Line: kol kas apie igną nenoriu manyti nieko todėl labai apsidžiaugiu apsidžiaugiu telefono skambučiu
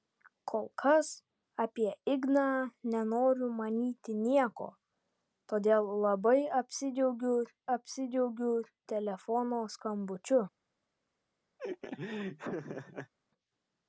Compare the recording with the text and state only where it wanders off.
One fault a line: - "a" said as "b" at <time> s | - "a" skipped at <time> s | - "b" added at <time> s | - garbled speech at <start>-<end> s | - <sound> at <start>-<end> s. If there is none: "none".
- laugh at 11.6-13.1 s